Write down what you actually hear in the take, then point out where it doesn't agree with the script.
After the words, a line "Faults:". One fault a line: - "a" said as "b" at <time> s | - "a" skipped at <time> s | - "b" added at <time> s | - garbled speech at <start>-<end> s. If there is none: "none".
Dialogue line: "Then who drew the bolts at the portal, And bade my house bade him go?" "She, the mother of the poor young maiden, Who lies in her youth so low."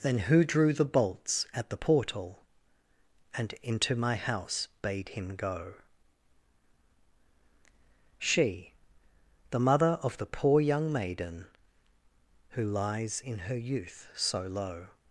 "Then who drew the bolts at the portal, And into my house bade him go?" "She, the mother of the poor young maiden, Who lies in her youth so low."
Faults:
- "bade" said as "into" at 3.6 s